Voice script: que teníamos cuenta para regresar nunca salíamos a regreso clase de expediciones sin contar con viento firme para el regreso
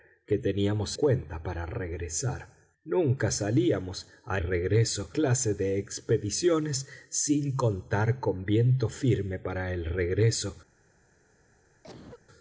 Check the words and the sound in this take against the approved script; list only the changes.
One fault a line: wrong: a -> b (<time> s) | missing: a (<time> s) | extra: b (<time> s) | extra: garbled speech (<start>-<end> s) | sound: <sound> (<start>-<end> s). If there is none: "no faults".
sound: cough (11.8-12.3 s)